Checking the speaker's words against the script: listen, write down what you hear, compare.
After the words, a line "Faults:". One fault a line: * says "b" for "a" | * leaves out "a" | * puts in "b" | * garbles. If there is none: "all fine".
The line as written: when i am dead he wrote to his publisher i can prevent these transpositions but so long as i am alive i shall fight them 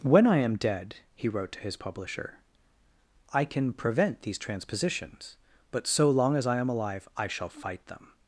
when i am dead he wrote to his publisher i can prevent these transpositions but so long as i am alive i shall fight them
Faults:
all fine